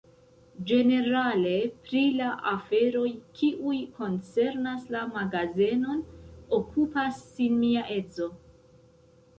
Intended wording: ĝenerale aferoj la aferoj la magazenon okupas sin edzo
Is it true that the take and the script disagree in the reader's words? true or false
true